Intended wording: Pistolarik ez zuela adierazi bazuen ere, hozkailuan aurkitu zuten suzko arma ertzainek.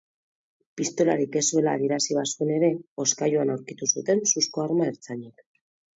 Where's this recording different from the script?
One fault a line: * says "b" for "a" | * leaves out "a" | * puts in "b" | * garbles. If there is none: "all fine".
all fine